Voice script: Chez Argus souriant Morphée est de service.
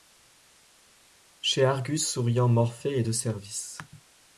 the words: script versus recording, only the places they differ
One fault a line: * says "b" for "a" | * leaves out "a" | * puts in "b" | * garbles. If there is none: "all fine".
all fine